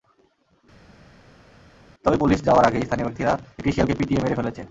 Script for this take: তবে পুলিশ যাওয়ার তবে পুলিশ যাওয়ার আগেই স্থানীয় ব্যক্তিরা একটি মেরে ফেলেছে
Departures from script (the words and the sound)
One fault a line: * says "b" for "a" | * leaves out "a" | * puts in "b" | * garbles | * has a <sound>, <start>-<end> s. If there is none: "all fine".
* leaves out "তবে পুলিশ যাওয়ার"
* puts in "শিয়ালকে পিটিয়ে"